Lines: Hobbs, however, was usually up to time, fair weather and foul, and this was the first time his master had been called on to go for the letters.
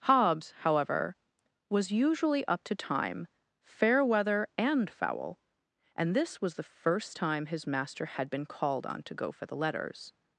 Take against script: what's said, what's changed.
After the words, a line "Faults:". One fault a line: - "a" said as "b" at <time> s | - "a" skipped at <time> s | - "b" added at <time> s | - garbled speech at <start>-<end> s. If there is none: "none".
Hobbs, however, was usually up to time, fair weather and foul, and this was the first time his master had been called on to go for the letters.
Faults:
none